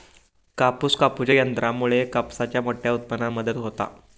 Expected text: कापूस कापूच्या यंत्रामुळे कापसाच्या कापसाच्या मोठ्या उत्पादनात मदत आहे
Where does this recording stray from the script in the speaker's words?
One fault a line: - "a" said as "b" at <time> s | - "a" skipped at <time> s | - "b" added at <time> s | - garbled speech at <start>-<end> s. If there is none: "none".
- "कापसाच्या" skipped at 2.6 s
- "आहे" said as "होता" at 3.6 s